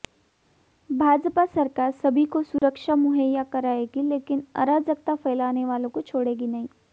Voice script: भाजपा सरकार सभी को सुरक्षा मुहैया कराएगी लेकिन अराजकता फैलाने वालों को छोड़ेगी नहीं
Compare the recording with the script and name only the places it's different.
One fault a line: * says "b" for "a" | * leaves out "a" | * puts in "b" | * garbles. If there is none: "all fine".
all fine